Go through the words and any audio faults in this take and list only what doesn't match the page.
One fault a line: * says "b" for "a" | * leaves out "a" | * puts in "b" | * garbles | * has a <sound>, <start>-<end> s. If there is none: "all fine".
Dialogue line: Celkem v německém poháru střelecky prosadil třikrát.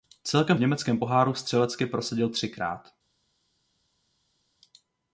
all fine